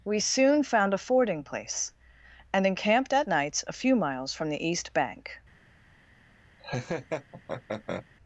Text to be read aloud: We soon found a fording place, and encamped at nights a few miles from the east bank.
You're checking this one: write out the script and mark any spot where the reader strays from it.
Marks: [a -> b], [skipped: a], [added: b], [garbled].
We soon found a fording place, and encamped at nights a few miles from the east bank.